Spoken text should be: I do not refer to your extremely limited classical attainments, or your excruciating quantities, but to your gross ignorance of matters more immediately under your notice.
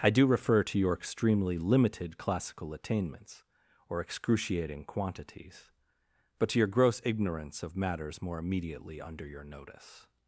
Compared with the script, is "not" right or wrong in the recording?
wrong